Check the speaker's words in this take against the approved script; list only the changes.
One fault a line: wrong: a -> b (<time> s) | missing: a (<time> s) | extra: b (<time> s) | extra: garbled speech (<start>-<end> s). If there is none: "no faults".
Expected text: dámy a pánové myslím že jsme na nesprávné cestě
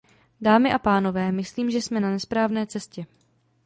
no faults